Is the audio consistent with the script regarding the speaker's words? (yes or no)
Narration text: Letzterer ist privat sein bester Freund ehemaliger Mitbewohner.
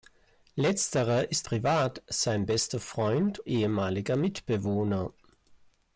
yes